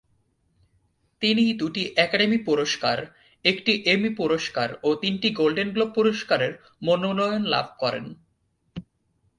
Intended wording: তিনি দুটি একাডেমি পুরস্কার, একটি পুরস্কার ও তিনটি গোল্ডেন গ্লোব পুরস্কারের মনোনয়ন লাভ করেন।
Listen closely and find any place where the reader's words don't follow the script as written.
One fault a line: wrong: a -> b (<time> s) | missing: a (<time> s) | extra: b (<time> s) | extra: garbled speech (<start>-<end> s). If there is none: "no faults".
extra: এমি (3.9 s)